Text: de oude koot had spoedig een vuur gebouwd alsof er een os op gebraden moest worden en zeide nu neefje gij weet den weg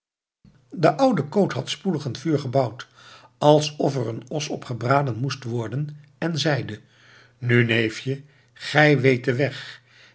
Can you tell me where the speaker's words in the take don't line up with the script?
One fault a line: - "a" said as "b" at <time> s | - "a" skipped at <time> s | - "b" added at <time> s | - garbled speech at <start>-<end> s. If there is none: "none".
none